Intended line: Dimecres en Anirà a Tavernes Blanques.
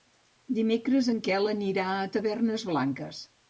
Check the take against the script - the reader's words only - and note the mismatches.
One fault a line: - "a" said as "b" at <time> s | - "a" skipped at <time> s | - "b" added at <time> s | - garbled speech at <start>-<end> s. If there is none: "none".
- "Quel" added at 1.3 s